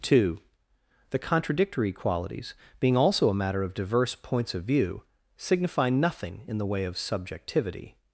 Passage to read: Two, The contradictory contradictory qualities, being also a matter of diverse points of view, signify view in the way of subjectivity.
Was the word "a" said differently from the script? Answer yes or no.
no